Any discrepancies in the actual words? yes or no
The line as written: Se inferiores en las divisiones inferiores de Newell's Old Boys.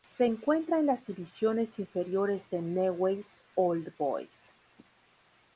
yes